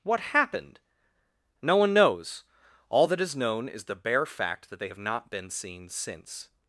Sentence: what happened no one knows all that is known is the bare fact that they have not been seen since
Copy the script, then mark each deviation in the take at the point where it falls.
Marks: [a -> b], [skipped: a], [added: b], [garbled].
what happened no one knows all that is known is the bare fact that they have not been seen since